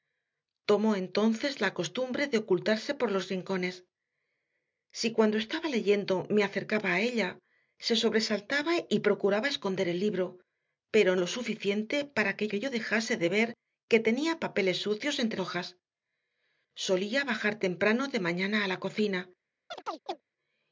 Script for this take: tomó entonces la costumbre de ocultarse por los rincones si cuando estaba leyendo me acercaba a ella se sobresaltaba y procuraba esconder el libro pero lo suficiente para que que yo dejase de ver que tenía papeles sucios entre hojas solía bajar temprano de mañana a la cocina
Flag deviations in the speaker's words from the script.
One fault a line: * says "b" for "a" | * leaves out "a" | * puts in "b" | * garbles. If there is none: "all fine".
all fine